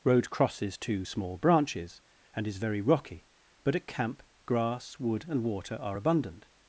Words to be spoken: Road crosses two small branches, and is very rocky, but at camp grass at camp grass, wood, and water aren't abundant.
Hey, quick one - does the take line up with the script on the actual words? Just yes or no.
no